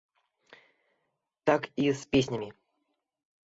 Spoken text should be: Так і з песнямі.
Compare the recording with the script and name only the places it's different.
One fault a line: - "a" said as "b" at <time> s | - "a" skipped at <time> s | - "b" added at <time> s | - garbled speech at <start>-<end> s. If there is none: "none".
none